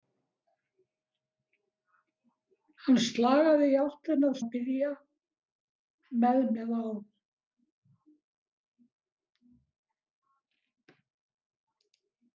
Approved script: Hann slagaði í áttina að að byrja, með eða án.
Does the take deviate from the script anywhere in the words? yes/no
no